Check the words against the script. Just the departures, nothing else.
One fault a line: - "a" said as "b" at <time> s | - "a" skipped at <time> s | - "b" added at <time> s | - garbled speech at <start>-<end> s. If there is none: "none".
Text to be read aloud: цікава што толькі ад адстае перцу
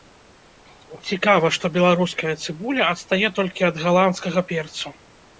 - "беларуская цыбуля адстае" added at 1.8 s
- "адстае" said as "галандскага" at 3.8 s